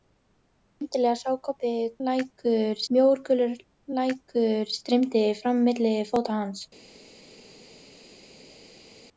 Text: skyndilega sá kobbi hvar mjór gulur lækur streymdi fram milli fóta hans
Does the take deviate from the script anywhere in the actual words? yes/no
yes